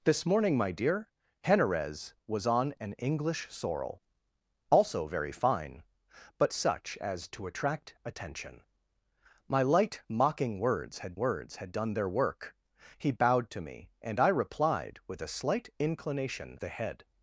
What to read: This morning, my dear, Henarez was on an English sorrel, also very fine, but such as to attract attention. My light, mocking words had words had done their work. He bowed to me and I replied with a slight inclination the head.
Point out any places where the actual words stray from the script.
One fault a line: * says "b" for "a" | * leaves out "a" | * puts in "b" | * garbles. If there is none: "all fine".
all fine